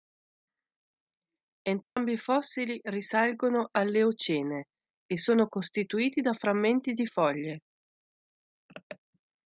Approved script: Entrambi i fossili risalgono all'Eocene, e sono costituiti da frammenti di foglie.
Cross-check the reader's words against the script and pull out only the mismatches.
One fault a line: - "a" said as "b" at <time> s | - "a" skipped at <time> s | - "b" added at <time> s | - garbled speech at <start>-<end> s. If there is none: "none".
none